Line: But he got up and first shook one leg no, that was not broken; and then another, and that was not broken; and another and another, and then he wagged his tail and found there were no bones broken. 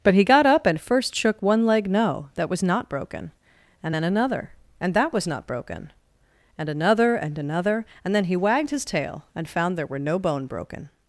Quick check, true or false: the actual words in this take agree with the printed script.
false